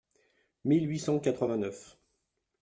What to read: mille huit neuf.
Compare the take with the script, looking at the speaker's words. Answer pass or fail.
fail